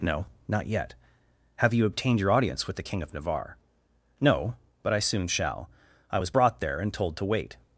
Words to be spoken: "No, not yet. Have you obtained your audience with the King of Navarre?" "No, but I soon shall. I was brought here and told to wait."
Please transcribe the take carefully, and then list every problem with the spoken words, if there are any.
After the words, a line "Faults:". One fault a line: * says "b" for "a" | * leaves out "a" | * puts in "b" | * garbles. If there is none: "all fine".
"No, not yet. Have you obtained your audience with the King of Navarre?" "No, but I soon shall. I was brought there and told to wait."
Faults:
* says "there" for "here"